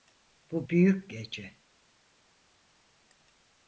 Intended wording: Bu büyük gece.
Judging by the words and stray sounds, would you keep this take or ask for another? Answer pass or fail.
pass